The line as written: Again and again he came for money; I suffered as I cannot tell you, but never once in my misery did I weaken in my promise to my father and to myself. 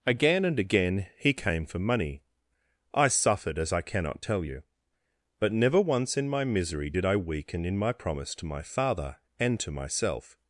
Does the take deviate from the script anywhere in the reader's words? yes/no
no